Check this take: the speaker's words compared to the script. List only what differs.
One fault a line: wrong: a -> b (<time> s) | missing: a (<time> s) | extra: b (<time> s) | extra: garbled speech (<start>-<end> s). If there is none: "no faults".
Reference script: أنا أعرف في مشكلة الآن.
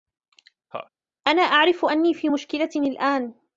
extra: أني (1.8 s)